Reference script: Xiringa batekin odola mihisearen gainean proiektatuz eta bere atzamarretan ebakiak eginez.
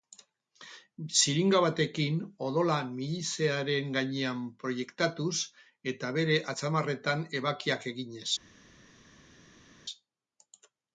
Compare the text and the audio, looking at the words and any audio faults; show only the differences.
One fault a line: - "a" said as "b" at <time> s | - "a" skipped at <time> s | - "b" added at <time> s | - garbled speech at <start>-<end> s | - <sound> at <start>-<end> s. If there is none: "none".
none